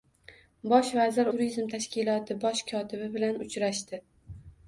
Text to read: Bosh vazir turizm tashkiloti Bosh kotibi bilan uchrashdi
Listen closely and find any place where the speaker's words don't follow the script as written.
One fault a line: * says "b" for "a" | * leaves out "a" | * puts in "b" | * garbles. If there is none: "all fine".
all fine